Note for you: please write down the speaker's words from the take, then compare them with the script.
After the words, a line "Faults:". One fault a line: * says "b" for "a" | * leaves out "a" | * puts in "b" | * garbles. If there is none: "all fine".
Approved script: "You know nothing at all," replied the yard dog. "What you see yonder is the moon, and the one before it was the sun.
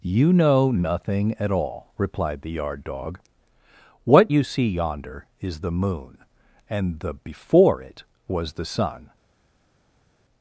"You know nothing at all," replied the yard dog. "What you see yonder is the moon, and the before it was the sun.
Faults:
* leaves out "one"